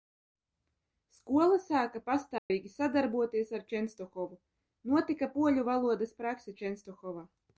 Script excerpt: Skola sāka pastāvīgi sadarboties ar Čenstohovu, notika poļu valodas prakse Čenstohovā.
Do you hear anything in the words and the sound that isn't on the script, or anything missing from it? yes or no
yes